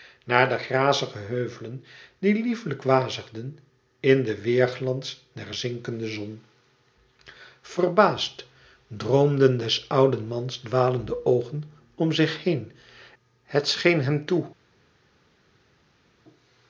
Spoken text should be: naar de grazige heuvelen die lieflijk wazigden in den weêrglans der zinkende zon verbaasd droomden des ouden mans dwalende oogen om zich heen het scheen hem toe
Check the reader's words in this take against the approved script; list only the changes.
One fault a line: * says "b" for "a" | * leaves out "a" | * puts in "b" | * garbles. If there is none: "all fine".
all fine